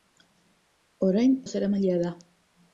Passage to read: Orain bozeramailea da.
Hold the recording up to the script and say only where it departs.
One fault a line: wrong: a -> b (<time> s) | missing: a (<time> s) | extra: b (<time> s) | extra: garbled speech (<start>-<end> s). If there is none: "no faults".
no faults